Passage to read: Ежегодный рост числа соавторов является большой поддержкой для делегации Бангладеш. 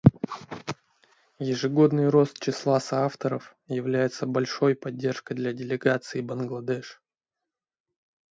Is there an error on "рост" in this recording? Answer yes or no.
no